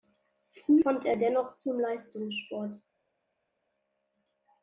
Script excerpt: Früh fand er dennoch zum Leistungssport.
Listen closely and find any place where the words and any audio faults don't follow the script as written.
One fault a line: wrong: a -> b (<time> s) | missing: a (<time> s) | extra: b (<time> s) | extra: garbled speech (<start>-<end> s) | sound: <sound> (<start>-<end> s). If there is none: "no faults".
no faults